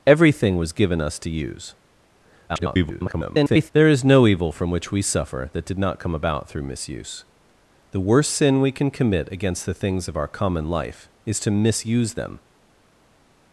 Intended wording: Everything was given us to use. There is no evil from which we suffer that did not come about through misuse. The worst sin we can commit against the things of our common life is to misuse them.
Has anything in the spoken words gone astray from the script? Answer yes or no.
yes